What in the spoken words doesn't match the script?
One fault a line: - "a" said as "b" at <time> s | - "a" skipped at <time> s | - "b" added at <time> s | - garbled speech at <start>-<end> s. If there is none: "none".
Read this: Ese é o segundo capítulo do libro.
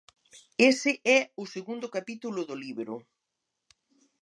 none